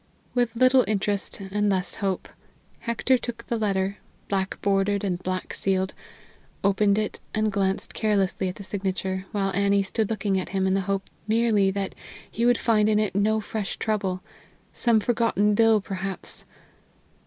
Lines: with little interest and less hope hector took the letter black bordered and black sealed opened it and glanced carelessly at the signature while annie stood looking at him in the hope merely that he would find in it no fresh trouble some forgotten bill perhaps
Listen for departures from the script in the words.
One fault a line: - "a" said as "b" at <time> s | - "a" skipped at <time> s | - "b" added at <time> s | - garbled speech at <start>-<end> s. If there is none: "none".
none